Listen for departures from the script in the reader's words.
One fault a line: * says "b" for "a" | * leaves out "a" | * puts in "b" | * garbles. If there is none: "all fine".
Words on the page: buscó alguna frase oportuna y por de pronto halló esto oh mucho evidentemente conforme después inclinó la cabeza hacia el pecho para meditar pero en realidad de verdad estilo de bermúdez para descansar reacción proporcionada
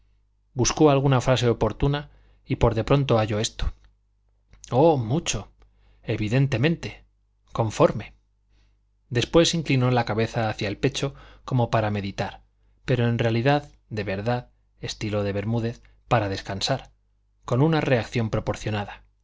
* puts in "como"
* puts in "con una"